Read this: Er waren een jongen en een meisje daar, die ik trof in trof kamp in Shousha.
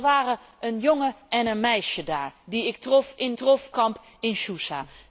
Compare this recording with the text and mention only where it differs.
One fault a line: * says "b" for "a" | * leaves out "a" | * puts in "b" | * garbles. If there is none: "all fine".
all fine